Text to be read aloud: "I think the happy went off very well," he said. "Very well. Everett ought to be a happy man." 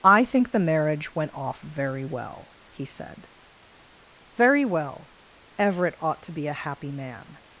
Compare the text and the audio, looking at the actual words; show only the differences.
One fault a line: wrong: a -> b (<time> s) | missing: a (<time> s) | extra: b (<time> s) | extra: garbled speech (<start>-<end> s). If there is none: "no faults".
wrong: happy -> marriage (0.6 s)